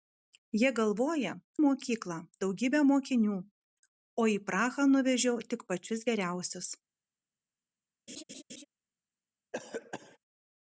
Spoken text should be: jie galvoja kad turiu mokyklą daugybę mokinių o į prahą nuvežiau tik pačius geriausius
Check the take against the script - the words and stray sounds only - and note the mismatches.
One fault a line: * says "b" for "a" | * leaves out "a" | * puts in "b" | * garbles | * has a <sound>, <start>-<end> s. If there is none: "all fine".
* leaves out "kad turiu"
* has a laugh, 8.1-8.7 s
* has a cough, 9.5-10.2 s